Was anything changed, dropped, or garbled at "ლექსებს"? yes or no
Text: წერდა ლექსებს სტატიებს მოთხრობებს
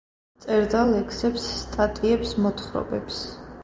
no